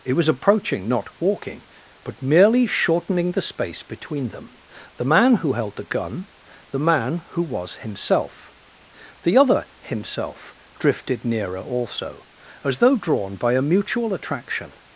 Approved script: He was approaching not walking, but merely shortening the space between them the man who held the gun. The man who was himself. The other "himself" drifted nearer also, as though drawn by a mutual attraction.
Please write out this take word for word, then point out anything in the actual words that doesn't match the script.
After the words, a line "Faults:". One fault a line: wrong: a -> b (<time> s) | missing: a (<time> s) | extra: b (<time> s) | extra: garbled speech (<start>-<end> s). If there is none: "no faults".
It was approaching not walking, but merely shortening the space between them the man who held the gun. The man who was himself. The other "himself" drifted nearer also, as though drawn by a mutual attraction.
Faults:
wrong: He -> It (0.0 s)